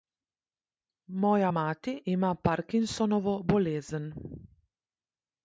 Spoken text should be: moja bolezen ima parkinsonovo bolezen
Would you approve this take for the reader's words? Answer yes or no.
no